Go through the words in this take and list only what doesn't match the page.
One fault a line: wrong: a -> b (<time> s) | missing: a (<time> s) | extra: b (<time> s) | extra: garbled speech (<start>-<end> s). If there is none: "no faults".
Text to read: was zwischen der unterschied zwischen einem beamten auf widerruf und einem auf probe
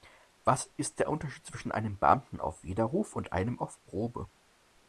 wrong: zwischen -> ist (0.8 s)